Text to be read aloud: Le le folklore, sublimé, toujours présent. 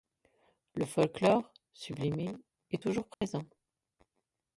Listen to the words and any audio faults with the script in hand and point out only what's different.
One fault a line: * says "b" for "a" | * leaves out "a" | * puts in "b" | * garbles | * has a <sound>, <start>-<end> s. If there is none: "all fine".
* leaves out "le"
* puts in "est"
* has a dropout, 3.1-3.2 s